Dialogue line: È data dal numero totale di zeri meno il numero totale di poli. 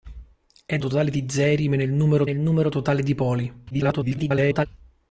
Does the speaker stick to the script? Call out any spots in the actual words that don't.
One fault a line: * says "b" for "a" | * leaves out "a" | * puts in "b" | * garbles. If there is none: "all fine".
* leaves out "data dal numero"
* puts in "il numero"
* garbles